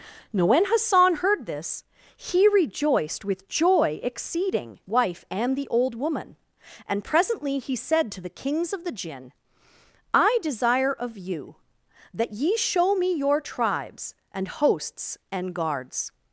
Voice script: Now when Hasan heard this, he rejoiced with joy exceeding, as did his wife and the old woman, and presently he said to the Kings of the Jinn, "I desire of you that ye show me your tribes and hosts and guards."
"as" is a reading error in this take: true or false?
true